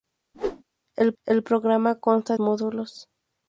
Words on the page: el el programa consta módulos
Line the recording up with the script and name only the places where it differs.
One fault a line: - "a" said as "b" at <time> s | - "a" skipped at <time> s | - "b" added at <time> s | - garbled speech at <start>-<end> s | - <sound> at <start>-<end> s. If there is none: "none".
- whoosh at 0.3-0.6 s